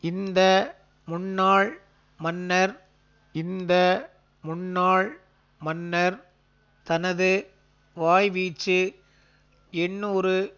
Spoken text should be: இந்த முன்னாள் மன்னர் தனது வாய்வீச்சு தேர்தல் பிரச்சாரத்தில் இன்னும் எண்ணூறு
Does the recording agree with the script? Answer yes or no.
no